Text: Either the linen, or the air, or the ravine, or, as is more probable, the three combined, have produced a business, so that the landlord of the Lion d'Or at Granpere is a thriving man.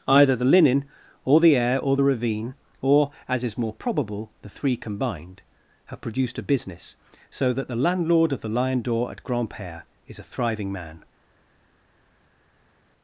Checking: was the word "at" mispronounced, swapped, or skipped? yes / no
no